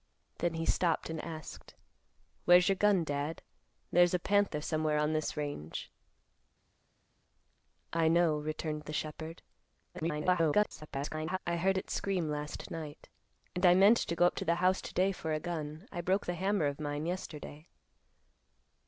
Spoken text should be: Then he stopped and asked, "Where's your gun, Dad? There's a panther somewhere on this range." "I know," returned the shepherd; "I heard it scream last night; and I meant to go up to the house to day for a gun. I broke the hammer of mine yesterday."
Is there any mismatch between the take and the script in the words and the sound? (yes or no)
yes